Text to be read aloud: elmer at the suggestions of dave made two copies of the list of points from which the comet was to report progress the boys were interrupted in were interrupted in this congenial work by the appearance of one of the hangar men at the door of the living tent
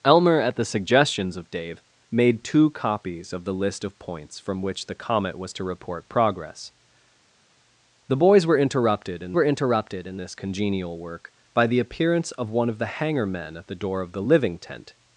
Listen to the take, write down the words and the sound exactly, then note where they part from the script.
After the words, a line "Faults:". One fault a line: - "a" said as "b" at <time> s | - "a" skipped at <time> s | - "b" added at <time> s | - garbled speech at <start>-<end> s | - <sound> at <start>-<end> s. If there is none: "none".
elmer at the suggestions of dave made two copies of the list of points from which the comet was to report progress the boys were interrupted in were interrupted in this congenial work by the appearance of one of the hangar men at the door of the living tent
Faults:
none